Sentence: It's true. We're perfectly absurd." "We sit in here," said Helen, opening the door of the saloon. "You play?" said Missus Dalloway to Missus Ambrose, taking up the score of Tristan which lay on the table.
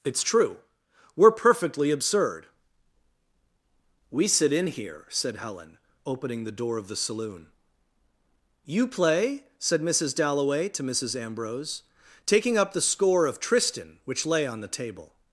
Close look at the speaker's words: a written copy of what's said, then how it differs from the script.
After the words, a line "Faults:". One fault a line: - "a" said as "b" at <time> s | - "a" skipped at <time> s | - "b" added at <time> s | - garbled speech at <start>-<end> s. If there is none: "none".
It's true. We're perfectly absurd." "We sit in here," said Helen, opening the door of the saloon. "You play?" said Missus Dalloway to Missus Ambrose, taking up the score of Tristan which lay on the table.
Faults:
none